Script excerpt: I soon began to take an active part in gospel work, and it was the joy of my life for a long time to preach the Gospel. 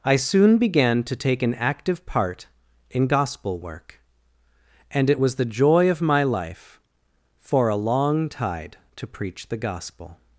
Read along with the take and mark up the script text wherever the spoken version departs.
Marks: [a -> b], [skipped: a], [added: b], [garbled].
I soon began to take an active part in gospel work, and it was the joy of my life for a long [time -> tide] to preach the Gospel.